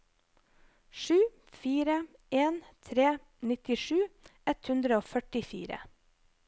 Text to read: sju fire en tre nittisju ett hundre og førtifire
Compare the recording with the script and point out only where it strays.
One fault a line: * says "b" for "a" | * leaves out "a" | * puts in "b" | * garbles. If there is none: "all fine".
all fine